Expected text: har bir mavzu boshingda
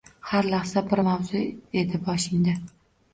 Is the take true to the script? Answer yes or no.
no